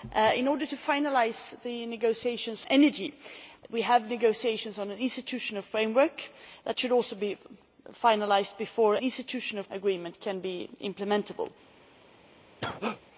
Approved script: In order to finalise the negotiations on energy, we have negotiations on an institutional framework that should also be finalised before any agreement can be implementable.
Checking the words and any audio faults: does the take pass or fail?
fail